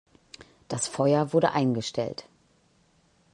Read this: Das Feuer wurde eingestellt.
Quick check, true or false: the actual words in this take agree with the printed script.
true